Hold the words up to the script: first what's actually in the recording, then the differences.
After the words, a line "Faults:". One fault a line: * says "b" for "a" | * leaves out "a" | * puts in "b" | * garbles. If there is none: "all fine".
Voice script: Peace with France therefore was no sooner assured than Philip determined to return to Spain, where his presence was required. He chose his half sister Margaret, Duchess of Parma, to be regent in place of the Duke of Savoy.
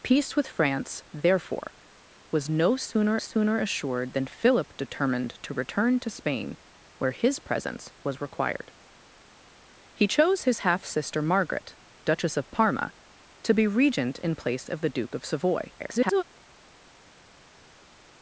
Peace with France therefore was no sooner sooner assured than Philip determined to return to Spain, where his presence was required. He chose his half sister Margaret, Duchess of Parma, to be regent in place of the Duke of Savoy. [garbled]
Faults:
* puts in "sooner"
* garbles